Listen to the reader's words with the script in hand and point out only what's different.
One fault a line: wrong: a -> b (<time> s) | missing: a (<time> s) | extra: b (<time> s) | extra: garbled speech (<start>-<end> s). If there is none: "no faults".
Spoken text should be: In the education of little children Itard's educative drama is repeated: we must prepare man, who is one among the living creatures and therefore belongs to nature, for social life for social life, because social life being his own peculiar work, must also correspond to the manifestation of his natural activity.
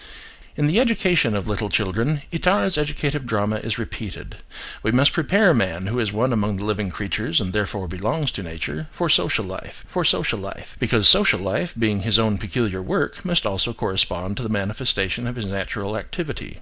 no faults